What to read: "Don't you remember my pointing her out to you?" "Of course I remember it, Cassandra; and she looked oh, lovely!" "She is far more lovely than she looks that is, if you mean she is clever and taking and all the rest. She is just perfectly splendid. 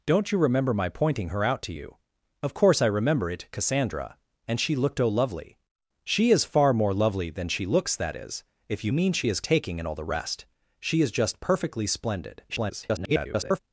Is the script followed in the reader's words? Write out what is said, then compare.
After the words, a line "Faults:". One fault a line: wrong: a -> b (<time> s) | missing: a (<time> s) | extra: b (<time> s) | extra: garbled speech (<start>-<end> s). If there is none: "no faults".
"Don't you remember my pointing her out to you?" "Of course I remember it, Cassandra; and she looked oh, lovely!" "She is far more lovely than she looks that is, if you mean she is taking and all the rest. She is just perfectly splendid. [garbled]
Faults:
missing: clever and (9.4 s)
extra: garbled speech (12.5-13.6 s)